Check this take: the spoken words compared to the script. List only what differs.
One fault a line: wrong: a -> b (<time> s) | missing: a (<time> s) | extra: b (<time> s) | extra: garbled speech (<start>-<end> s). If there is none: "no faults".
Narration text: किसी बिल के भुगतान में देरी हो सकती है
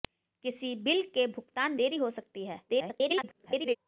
missing: में (1.8 s)
extra: garbled speech (2.7-3.8 s)